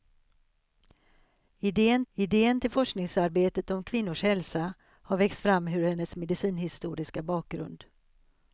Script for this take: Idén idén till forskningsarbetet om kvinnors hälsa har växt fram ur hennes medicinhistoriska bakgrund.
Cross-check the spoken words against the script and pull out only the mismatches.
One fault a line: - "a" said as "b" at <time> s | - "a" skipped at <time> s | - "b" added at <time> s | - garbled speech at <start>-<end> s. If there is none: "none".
none